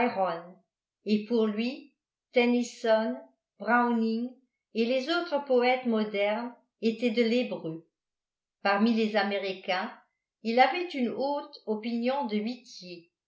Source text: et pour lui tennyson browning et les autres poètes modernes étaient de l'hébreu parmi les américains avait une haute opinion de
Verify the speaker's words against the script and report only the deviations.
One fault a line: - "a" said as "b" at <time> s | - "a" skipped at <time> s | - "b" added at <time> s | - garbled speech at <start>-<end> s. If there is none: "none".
- "il" added at 10.4 s